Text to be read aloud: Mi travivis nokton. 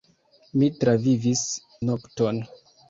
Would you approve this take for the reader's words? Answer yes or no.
yes